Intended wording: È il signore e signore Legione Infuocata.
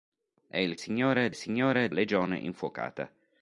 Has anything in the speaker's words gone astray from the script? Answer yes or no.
no